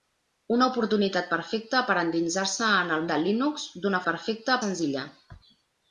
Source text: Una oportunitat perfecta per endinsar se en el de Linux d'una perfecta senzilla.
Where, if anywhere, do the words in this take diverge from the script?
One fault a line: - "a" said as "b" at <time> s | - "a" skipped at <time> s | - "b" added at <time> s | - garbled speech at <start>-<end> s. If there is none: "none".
none